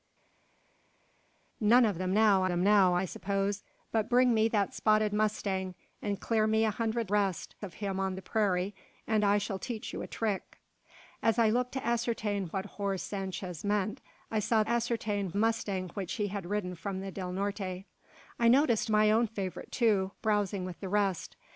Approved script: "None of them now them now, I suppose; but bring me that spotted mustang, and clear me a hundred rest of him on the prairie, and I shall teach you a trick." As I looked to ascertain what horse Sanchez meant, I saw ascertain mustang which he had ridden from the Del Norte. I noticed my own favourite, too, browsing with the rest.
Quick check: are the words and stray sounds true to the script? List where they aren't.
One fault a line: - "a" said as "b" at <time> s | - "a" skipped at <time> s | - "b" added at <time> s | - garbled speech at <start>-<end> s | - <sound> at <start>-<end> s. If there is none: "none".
none